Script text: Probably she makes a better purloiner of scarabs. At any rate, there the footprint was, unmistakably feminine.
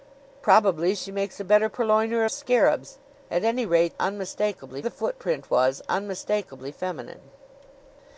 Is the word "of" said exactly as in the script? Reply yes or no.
no